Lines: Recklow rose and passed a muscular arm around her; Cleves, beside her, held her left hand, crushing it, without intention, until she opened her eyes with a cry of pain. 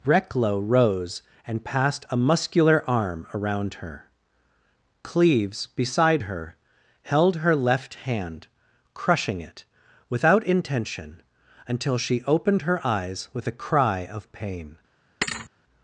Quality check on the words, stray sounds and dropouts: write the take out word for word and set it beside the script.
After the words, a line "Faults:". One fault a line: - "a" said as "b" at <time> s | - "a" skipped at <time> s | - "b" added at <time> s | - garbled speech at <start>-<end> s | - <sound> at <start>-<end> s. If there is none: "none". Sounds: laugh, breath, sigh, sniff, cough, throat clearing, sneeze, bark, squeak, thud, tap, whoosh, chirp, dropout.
Recklow rose and passed a muscular arm around her; Cleves, beside her, held her left hand, crushing it, without intention, until she opened her eyes with a cry of pain.
Faults:
- thud at 15.2-15.5 s